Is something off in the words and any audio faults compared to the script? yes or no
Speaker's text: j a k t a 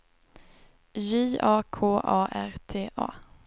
yes